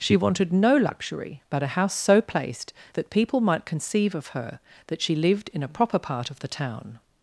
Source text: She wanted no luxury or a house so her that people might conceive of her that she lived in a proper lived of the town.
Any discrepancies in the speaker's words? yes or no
yes